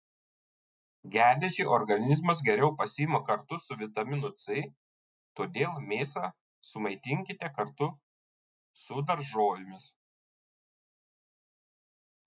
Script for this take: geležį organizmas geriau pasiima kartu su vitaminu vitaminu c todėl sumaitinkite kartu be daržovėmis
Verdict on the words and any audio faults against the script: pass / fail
fail